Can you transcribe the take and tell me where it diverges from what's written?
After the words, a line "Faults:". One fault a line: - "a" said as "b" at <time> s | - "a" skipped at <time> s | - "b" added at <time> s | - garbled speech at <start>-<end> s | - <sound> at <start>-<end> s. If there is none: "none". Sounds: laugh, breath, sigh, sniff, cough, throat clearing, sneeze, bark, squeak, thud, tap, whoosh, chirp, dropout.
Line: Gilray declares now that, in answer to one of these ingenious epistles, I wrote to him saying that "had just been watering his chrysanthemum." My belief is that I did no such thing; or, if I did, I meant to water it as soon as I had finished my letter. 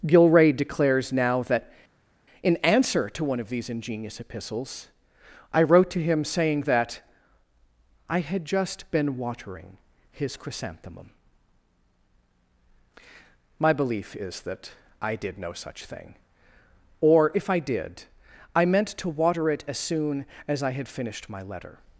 Gilray declares now that, in answer to one of these ingenious epistles, I wrote to him saying that "I had just been watering his chrysanthemum." My belief is that I did no such thing; or, if I did, I meant to water it as soon as I had finished my letter.
Faults:
- "I" added at 8.1 s